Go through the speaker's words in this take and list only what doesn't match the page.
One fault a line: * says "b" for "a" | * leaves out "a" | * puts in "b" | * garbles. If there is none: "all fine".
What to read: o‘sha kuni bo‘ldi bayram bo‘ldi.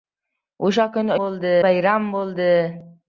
all fine